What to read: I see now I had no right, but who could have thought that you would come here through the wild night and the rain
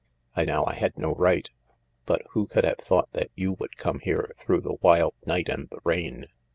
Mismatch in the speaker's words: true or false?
true